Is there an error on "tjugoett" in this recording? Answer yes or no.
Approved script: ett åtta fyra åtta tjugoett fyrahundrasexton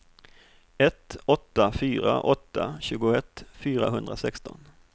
no